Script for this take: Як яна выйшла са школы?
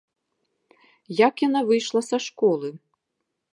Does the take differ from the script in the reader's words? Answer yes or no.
no